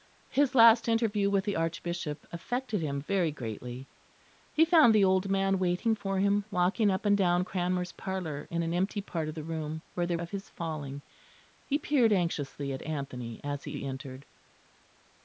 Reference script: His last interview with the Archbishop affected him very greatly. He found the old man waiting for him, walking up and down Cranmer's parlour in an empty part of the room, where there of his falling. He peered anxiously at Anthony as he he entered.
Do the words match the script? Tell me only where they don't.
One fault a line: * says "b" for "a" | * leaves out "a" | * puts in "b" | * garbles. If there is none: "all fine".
all fine